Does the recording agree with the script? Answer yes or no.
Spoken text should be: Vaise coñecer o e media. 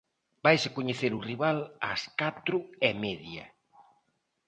no